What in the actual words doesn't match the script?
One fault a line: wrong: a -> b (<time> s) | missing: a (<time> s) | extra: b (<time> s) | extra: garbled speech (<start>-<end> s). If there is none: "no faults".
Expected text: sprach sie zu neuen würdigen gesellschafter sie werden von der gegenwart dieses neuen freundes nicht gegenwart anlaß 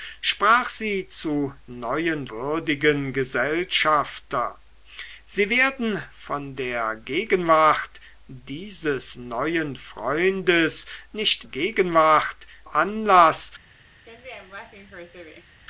no faults